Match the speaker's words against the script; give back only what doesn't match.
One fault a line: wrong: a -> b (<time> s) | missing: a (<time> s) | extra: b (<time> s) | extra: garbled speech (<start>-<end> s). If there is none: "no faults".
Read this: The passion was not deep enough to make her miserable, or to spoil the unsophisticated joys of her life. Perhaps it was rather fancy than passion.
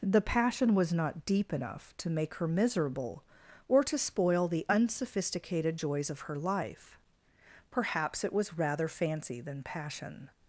no faults